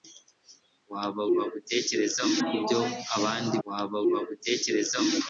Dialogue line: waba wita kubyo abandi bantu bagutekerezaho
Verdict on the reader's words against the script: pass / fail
fail